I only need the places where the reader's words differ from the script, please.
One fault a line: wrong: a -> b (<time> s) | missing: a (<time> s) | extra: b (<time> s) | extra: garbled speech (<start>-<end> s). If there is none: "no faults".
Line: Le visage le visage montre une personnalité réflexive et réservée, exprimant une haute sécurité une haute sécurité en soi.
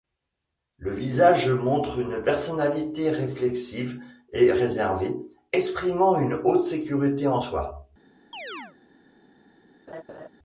missing: le visage (1.5 s)
missing: une haute sécurité (7.3 s)